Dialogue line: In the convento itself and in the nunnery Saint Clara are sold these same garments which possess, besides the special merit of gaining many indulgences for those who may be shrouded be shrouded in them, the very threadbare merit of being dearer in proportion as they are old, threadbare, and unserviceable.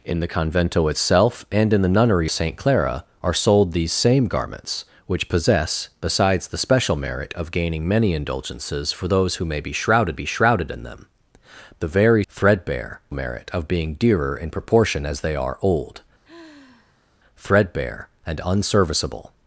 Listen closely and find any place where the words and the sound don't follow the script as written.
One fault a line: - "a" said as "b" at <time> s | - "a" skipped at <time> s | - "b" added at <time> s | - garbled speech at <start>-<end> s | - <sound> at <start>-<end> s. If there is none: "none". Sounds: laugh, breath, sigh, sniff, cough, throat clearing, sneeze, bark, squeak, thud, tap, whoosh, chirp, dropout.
- sigh at 16.2-17.1 s